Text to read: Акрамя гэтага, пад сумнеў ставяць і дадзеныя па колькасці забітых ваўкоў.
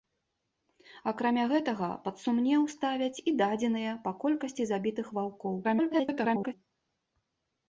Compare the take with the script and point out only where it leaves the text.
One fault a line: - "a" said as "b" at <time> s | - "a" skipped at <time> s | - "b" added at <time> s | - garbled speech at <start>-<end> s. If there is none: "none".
- garbled speech at 5.6-6.5 s